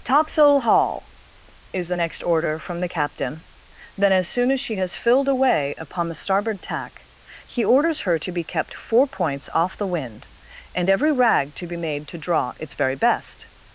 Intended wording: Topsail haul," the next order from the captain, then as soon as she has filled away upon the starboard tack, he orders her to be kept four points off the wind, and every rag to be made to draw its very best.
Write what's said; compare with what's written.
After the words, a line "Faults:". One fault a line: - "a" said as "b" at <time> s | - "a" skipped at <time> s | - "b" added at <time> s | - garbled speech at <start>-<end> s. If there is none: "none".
Topsail haul," is the next order from the captain, then as soon as she has filled away upon the starboard tack, he orders her to be kept four points off the wind, and every rag to be made to draw its very best.
Faults:
- "is" added at 1.7 s